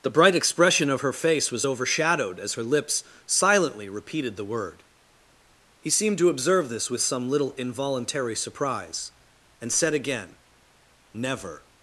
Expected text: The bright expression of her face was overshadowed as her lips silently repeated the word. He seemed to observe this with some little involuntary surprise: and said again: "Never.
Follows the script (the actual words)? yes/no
yes